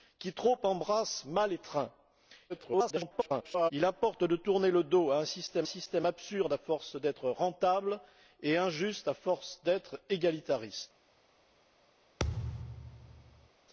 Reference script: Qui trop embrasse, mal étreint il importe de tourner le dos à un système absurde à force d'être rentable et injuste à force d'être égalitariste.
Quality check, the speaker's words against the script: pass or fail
fail